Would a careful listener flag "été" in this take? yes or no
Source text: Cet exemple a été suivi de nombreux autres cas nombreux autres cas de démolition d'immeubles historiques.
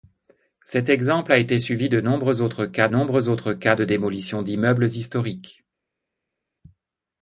no